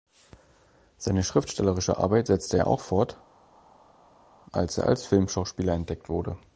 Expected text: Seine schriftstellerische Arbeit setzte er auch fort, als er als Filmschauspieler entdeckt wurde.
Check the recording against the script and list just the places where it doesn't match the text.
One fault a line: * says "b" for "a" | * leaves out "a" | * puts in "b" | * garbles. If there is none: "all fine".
all fine